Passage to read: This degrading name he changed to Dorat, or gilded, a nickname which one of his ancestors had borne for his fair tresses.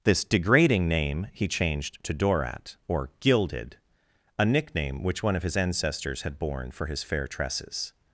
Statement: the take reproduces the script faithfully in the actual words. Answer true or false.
true